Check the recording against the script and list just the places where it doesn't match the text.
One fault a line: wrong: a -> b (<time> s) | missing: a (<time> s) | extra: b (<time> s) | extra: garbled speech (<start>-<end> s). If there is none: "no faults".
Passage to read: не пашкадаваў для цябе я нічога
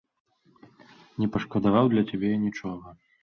no faults